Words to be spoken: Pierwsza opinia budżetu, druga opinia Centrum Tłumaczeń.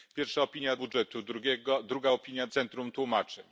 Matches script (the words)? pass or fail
pass